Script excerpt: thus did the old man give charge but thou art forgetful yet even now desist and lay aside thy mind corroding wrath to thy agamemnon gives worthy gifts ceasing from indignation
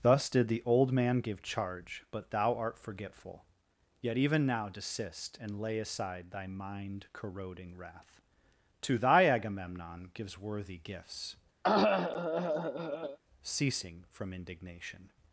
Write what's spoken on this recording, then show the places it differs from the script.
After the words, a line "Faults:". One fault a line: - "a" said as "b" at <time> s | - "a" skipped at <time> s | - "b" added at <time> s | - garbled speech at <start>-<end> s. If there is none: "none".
thus did the old man give charge but thou art forgetful yet even now desist and lay aside thy mind corroding wrath to thy agamemnon gives worthy gifts ceasing from indignation
Faults:
none